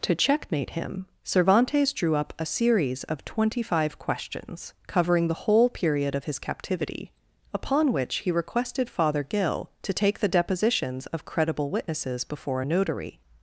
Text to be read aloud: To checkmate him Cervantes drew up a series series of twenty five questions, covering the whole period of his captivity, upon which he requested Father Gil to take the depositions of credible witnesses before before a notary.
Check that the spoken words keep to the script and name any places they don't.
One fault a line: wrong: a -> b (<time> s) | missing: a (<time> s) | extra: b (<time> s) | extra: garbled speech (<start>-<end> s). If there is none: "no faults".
missing: series (3.0 s)
missing: before (12.6 s)